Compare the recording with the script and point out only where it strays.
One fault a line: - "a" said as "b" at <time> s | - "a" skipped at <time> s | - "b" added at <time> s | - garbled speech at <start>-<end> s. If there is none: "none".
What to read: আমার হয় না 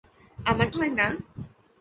none